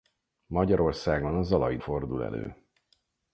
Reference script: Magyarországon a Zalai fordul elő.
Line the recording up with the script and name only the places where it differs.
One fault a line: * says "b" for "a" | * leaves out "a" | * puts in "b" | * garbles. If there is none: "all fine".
all fine